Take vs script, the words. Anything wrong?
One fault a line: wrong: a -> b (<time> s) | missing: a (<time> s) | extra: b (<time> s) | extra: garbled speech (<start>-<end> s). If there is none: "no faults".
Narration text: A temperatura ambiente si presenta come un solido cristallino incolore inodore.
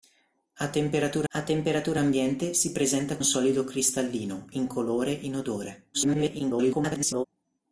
extra: a temperatura (1.3 s)
missing: come (3.2 s)
extra: garbled speech (5.9-7.3 s)